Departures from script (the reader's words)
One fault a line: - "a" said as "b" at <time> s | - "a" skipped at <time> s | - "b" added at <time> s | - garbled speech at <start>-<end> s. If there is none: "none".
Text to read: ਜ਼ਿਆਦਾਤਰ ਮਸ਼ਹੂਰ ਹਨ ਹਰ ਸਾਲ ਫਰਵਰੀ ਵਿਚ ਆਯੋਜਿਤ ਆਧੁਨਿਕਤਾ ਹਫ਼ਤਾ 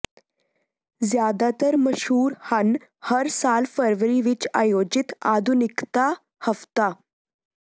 none